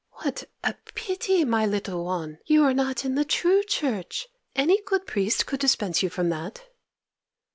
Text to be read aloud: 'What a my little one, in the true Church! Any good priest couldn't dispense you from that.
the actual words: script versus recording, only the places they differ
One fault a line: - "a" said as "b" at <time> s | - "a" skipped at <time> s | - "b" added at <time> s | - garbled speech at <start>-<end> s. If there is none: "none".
- "pity" added at 0.9 s
- "you are not" added at 2.5 s
- "couldn't" said as "could" at 5.5 s